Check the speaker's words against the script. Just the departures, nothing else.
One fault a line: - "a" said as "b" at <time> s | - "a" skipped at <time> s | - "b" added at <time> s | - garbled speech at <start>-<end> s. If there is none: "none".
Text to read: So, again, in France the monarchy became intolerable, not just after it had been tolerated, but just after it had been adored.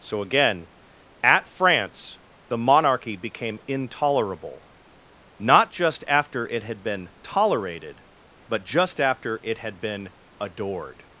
- "in" said as "at" at 1.2 s